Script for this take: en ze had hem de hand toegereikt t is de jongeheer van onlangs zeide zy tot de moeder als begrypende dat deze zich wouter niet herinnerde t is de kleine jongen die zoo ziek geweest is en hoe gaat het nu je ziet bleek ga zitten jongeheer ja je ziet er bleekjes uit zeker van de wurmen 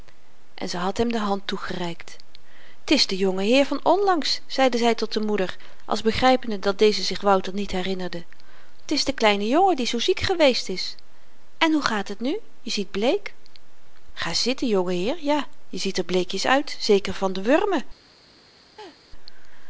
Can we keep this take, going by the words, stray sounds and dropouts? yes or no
no